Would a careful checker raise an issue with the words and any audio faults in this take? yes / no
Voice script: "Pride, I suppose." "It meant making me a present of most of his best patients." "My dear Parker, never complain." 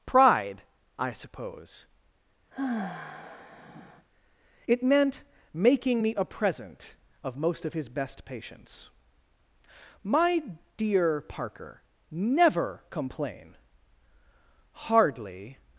yes